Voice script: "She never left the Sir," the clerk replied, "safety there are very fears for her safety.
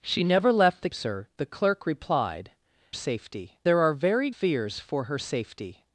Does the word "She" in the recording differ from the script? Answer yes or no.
no